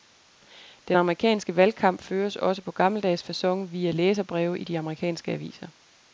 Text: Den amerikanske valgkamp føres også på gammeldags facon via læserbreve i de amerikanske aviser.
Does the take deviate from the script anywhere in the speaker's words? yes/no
no